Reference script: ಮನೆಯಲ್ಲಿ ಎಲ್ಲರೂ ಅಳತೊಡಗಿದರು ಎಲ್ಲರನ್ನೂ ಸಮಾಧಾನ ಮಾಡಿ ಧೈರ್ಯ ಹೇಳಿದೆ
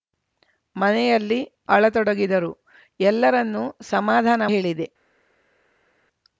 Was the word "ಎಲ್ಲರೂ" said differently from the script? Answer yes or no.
yes